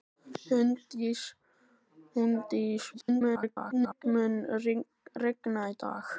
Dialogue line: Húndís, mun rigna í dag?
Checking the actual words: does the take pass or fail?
fail